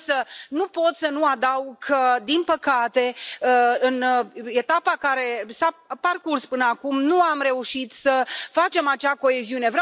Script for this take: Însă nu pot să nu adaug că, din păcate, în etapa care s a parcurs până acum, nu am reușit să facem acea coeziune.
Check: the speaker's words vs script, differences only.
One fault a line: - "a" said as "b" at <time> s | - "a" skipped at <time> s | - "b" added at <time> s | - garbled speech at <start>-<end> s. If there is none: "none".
none